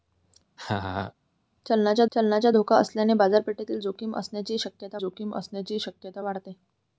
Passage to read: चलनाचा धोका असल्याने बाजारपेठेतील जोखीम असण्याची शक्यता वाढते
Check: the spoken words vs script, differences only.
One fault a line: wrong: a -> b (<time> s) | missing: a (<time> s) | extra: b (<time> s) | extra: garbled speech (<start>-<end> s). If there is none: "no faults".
extra: चलनाचा (2.1 s)
extra: जोखीम असण्याची शक्यता (5.0 s)